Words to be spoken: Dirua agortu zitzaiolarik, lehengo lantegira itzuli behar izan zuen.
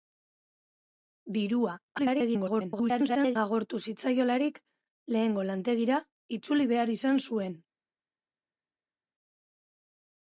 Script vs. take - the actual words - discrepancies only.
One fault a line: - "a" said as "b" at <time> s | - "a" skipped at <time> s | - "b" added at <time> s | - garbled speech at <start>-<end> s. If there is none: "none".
- garbled speech at 2.0-3.4 s